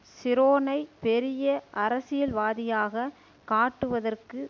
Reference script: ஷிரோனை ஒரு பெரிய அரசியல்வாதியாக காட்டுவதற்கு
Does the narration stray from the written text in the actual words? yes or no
yes